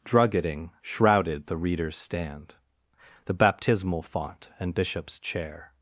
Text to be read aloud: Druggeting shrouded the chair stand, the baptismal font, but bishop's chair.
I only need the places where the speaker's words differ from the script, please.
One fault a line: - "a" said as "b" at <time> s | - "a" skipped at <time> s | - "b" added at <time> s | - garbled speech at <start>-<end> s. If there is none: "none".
- "chair" said as "reader's" at 1.6 s
- "but" said as "and" at 4.6 s